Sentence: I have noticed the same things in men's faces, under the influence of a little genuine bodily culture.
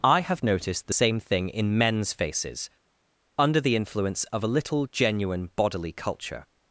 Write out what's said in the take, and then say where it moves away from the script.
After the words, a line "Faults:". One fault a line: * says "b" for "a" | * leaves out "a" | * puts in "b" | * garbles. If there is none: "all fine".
I have noticed the same thing in men's faces, under the influence of a little genuine bodily culture.
Faults:
* says "thing" for "things"